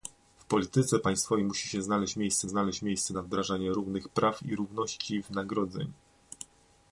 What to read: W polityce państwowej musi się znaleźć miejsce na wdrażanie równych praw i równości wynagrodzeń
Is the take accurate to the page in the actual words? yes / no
no